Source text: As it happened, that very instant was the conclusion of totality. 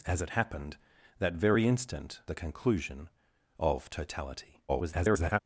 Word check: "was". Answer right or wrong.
wrong